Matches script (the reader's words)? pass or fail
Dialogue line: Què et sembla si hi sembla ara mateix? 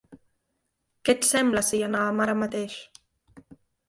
fail